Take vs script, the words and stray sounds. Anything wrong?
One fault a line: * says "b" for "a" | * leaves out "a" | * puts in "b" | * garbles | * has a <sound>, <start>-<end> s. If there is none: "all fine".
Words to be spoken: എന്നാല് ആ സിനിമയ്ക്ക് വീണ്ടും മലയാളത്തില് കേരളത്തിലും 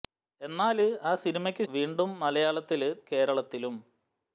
all fine